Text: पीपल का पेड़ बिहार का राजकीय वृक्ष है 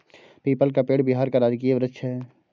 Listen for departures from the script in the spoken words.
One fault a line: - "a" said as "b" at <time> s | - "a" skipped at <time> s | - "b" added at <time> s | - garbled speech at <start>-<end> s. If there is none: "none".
none